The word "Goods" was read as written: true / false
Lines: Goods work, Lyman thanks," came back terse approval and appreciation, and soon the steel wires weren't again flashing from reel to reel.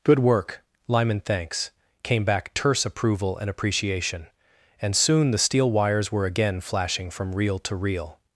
false